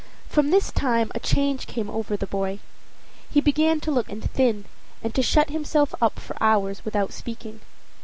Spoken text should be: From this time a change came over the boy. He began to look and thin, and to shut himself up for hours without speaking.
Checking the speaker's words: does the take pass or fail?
pass